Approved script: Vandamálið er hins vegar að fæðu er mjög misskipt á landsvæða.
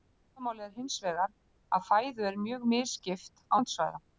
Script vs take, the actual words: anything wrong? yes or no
no